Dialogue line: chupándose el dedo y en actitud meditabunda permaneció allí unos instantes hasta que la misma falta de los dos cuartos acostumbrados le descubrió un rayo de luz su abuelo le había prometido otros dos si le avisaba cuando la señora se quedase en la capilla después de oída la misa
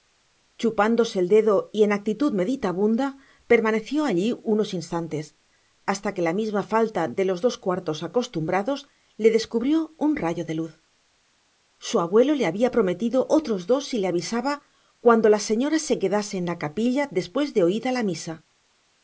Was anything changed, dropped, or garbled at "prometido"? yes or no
no